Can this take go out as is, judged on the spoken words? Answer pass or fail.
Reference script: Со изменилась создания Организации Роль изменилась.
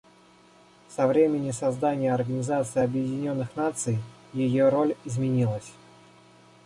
fail